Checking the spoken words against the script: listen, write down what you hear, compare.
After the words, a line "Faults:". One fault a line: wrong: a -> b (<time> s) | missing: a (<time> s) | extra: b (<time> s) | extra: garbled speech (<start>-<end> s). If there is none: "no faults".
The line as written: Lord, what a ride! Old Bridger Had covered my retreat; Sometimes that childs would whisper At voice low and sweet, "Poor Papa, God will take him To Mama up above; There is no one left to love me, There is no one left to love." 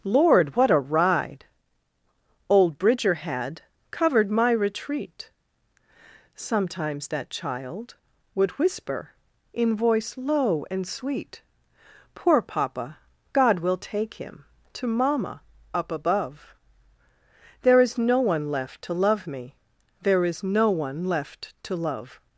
Lord, what a ride! Old Bridger Had covered my retreat; Sometimes that child would whisper In voice low and sweet, "Poor Papa, God will take him To Mama up above; There is no one left to love me, There is no one left to love."
Faults:
wrong: childs -> child (7.3 s)
wrong: At -> In (9.5 s)